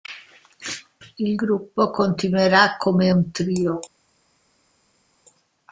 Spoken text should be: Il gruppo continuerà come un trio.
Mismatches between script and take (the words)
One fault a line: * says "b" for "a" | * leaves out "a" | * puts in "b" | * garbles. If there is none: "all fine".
all fine